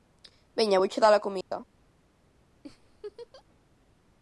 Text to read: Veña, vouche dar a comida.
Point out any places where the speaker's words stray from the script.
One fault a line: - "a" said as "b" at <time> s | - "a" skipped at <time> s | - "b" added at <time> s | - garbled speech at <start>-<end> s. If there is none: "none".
none